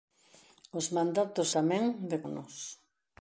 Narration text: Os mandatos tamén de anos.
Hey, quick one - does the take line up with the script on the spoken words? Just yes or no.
yes